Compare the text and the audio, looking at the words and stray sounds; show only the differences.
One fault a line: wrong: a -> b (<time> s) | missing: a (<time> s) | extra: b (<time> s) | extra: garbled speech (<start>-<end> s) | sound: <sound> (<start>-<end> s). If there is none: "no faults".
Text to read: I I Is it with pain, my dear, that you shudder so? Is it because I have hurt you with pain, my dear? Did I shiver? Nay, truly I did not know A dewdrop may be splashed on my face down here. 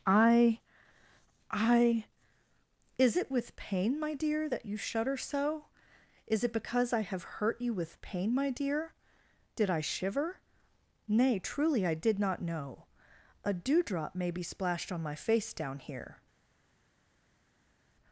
no faults